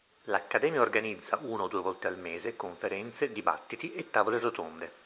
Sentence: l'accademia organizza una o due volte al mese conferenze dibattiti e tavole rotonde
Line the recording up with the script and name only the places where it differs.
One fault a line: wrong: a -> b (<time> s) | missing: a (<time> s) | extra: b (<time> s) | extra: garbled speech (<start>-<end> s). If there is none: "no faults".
no faults